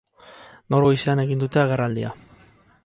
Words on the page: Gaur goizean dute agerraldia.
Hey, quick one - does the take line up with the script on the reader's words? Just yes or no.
no